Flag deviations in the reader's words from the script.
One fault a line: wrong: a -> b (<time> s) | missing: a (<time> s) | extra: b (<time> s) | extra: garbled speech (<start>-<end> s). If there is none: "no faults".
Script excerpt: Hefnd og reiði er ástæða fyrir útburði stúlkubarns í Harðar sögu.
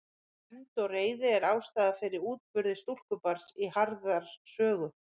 no faults